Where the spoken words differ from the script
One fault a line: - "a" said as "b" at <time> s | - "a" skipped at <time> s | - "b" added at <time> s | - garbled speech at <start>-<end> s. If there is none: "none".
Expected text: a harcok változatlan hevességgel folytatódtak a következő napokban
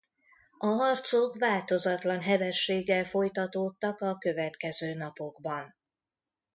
none